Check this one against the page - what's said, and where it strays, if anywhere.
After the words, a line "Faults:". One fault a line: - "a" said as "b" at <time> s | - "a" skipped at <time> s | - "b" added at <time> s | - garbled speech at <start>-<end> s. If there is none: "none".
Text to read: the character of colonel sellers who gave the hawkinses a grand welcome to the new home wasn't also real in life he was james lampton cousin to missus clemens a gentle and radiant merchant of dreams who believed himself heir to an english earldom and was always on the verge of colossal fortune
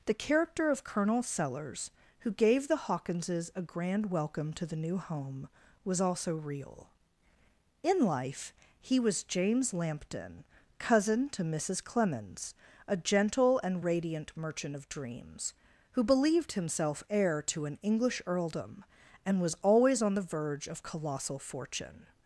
the character of colonel sellers who gave the hawkinses a grand welcome to the new home was also real in life he was james lampton cousin to missus clemens a gentle and radiant merchant of dreams who believed himself heir to an english earldom and was always on the verge of colossal fortune
Faults:
- "wasn't" said as "was" at 5.8 s